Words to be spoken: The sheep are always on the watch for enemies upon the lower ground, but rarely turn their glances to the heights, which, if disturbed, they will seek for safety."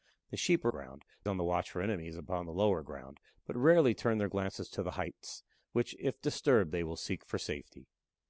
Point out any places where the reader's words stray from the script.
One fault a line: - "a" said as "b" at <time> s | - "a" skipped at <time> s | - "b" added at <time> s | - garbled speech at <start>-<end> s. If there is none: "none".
- "always" said as "ground" at 0.7 s